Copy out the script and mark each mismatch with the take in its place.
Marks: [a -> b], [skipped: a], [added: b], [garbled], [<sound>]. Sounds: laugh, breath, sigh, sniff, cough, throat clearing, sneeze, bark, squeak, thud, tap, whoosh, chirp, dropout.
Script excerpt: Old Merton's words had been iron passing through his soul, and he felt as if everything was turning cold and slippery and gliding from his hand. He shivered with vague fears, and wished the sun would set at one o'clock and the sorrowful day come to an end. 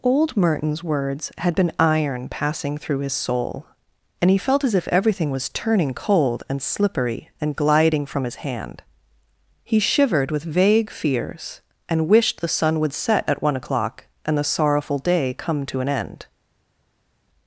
Old Merton's words had been iron passing through his soul, and he felt as if everything was turning cold and slippery and gliding from his hand. He shivered with vague fears, and wished the sun would set at one o'clock and the sorrowful day come to an end.